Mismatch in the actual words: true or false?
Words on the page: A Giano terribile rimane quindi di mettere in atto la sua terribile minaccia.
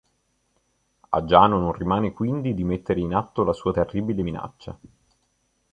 true